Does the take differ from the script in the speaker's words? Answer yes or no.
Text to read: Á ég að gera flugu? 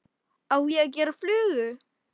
no